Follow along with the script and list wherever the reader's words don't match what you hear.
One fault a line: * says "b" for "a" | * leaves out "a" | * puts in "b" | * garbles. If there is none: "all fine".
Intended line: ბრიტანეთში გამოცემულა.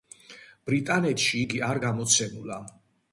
* puts in "იგი არ"